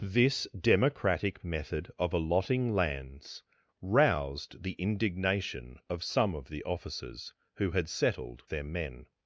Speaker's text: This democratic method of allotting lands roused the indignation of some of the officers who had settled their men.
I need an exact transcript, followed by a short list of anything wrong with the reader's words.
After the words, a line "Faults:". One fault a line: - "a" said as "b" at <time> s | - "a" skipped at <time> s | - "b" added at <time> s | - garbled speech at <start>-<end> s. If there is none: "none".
This democratic method of allotting lands roused the indignation of some of the officers who had settled their men.
Faults:
none